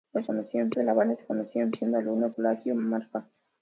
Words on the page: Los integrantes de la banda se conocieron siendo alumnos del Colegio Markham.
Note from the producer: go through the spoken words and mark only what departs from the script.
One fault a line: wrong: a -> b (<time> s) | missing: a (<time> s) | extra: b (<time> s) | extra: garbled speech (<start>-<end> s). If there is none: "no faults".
wrong: integrantes -> conocieron (0.2 s)
missing: del (2.3 s)